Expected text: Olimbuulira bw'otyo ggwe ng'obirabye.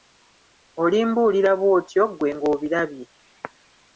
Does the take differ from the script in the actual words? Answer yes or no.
no